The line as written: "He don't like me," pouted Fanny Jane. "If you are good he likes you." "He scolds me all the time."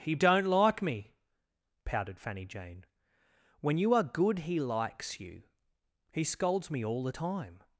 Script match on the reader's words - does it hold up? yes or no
no